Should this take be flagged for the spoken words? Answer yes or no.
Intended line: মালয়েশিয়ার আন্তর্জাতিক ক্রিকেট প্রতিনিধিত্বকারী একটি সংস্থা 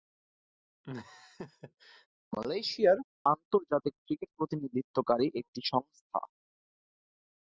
no